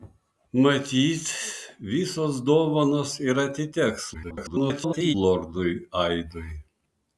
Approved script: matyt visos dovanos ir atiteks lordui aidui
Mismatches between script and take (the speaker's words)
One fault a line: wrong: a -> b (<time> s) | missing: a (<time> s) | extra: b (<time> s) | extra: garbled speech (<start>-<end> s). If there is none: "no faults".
extra: garbled speech (4.1-5.1 s)